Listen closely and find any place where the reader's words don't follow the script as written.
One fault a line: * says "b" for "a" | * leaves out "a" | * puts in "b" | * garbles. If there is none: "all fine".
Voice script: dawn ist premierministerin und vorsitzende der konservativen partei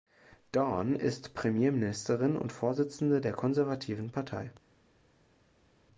all fine